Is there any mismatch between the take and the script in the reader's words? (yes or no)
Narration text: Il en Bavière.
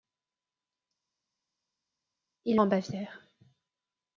no